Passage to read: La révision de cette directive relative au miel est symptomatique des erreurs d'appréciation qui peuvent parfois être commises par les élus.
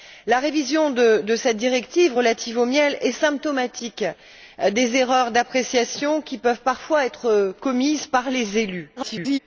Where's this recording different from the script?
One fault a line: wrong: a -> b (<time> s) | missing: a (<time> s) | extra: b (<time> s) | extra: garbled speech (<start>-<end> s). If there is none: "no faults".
extra: garbled speech (9.0-9.4 s)